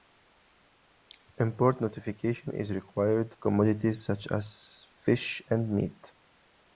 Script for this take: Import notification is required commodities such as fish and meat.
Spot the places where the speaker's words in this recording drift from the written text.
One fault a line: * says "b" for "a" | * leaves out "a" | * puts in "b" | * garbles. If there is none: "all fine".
all fine